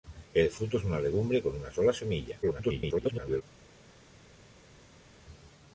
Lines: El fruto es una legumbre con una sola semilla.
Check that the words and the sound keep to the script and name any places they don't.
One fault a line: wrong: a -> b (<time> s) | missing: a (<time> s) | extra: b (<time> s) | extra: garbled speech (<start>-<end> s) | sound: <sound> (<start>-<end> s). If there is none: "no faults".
extra: garbled speech (2.4-3.4 s)